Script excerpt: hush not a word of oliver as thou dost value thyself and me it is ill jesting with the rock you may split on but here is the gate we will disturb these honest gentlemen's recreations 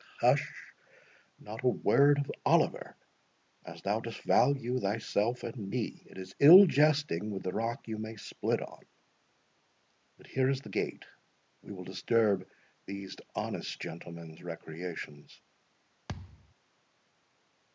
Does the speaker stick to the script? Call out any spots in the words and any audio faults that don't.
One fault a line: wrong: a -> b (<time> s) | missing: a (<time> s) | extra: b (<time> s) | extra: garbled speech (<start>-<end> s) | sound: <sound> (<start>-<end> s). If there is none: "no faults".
sound: thud (16.1-16.5 s)